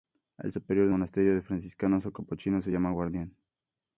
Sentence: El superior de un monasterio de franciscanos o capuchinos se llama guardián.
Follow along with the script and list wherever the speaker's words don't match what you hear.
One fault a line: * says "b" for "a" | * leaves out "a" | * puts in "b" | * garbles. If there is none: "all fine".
* leaves out "un"